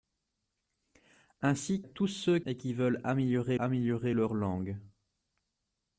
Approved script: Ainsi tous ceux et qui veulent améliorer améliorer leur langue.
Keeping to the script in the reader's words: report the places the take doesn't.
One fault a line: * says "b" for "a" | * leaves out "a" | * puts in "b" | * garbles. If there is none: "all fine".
all fine